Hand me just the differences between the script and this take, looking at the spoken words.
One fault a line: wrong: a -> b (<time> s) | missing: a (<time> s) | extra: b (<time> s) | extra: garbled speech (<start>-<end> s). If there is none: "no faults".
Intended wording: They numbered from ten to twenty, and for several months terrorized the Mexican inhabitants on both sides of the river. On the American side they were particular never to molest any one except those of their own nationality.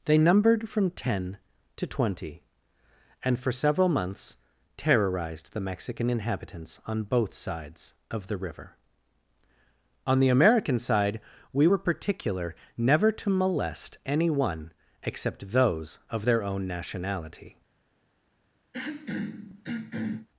wrong: they -> we (11.5 s)